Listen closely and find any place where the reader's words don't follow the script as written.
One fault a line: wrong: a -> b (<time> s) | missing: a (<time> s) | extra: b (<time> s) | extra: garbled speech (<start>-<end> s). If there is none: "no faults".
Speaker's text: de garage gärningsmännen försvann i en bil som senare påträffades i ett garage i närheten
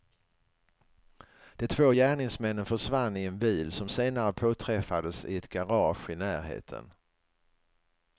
wrong: garage -> två (1.7 s)